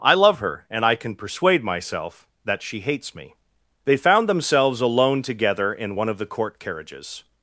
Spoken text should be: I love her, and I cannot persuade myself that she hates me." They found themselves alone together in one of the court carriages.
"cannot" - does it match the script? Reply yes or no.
no